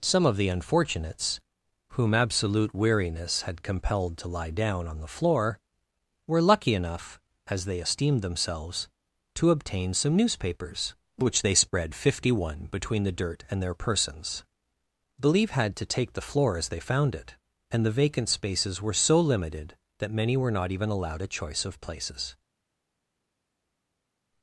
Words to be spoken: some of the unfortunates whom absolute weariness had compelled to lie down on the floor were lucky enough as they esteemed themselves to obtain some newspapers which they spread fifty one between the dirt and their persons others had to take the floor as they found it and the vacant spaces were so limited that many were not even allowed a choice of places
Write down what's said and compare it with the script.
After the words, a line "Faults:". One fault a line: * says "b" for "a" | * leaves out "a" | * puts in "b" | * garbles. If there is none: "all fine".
some of the unfortunates whom absolute weariness had compelled to lie down on the floor were lucky enough as they esteemed themselves to obtain some newspapers which they spread fifty one between the dirt and their persons believe had to take the floor as they found it and the vacant spaces were so limited that many were not even allowed a choice of places
Faults:
* says "believe" for "others"